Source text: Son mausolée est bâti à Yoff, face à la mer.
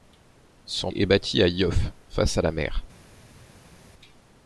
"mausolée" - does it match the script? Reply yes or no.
no